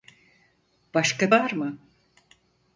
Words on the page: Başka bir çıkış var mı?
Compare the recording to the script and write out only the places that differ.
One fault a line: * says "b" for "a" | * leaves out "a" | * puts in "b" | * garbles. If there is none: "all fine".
* leaves out "bir çıkış"